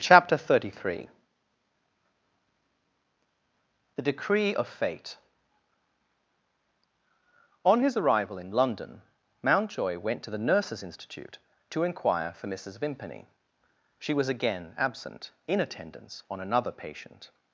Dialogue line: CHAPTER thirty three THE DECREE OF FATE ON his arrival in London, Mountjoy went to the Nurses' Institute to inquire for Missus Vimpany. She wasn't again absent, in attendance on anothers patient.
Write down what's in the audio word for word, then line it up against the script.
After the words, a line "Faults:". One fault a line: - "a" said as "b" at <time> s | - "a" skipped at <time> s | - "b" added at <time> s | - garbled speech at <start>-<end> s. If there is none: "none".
CHAPTER thirty three THE DECREE OF FATE ON his arrival in London, Mountjoy went to the Nurses' Institute to inquire for Missus Vimpany. She was again absent, in attendance on another patient.
Faults:
- "wasn't" said as "was" at 14.1 s
- "anothers" said as "another" at 16.4 s